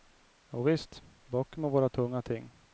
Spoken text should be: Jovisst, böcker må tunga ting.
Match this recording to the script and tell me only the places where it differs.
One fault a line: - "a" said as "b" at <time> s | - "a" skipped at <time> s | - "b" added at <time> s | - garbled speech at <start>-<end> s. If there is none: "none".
- "vara" added at 1.7 s